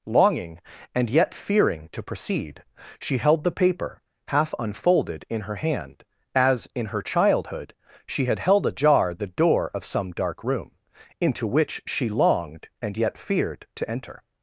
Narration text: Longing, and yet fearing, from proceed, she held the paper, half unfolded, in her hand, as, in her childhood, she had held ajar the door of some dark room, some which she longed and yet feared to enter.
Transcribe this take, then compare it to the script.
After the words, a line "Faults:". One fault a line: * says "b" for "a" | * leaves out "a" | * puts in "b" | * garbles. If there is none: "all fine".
Longing, and yet fearing, to proceed, she held the paper, half unfolded, in her hand, as, in her childhood, she had held ajar the door of some dark room, into which she longed and yet feared to enter.
Faults:
* says "to" for "from"
* says "into" for "some"